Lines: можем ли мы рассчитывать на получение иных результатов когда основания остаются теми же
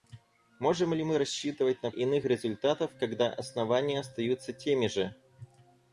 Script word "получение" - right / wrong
wrong